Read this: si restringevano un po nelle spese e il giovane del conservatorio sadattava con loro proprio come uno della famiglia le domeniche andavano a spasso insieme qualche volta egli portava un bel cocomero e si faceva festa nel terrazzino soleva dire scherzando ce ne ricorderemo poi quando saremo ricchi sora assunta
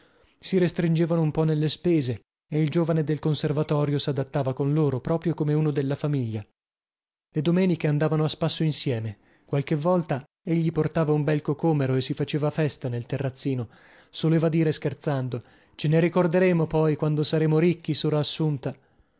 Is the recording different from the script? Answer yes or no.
no